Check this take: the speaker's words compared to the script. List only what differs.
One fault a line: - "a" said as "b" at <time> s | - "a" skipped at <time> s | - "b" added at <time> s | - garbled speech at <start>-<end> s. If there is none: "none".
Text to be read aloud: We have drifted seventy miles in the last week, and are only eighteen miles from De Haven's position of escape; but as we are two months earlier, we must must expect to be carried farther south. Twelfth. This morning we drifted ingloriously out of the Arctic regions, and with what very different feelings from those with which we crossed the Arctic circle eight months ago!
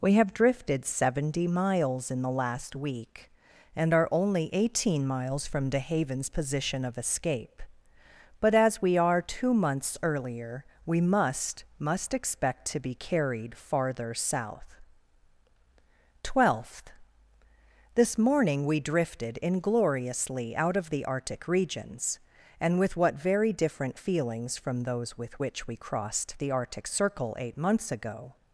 none